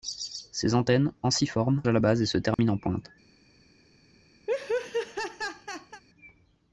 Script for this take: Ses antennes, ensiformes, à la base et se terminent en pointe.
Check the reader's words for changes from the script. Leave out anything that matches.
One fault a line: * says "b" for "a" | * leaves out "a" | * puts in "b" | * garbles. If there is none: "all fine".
all fine